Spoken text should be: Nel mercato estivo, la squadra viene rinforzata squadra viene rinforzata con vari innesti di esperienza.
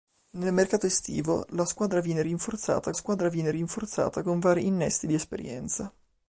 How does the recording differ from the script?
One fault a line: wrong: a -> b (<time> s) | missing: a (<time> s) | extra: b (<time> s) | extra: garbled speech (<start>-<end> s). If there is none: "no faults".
no faults